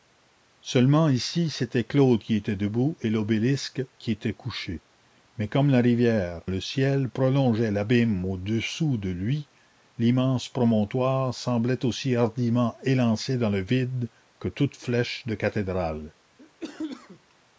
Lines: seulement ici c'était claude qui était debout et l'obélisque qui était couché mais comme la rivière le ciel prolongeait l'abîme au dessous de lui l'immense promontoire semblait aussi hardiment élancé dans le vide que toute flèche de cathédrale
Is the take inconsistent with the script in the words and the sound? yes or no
yes